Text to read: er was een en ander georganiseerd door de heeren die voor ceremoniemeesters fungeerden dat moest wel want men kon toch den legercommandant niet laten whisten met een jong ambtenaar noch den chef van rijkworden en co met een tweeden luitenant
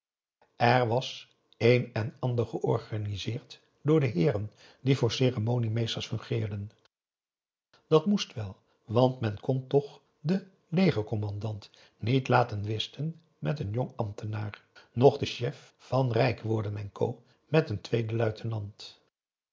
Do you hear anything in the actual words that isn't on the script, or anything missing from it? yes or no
no